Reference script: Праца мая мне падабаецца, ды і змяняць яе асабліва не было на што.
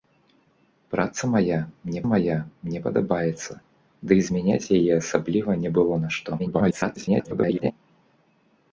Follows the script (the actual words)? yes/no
no